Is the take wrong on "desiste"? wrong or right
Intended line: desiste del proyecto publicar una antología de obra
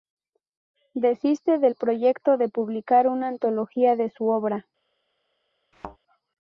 right